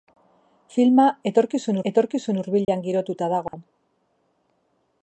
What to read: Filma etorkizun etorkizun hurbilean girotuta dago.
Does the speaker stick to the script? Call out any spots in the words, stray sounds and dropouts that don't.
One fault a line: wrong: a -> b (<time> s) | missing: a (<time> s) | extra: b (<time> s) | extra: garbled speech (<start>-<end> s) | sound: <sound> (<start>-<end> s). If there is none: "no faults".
sound: dropout (2.6-2.7 s)
sound: dropout (3.5-3.5 s)